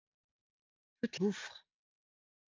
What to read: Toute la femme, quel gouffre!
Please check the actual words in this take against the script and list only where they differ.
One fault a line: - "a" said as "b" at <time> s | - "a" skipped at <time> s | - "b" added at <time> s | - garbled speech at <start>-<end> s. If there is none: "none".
- "la femme quel" skipped at 1.2 s